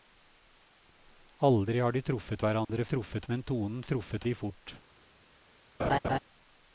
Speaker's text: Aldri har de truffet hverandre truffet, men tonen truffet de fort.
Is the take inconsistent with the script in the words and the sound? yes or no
yes